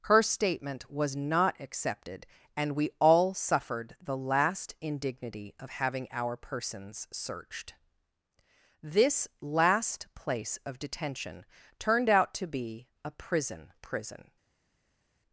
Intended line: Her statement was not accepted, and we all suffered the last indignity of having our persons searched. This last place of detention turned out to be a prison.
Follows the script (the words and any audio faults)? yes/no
no